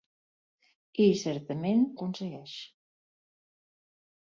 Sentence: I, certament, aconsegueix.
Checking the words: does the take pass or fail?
pass